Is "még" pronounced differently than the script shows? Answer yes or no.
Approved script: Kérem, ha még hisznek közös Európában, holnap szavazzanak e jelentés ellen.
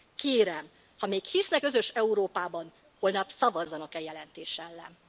no